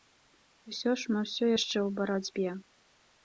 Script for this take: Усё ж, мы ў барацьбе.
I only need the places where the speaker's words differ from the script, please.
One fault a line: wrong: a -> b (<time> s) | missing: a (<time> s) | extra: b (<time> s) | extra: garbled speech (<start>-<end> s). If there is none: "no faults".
extra: ўсё яшчэ (1.3 s)